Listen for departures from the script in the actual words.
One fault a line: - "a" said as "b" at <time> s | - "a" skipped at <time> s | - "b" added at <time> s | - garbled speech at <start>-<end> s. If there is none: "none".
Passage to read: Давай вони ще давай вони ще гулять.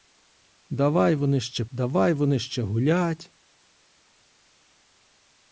none